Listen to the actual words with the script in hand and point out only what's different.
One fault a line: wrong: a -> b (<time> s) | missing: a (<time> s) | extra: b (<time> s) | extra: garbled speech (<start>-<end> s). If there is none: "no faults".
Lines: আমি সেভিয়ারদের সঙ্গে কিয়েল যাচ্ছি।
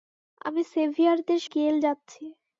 missing: সঙ্গে (1.4 s)